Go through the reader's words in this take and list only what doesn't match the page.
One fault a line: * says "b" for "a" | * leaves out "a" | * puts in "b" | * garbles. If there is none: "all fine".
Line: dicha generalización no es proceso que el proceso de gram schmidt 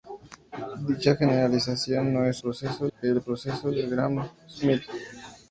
all fine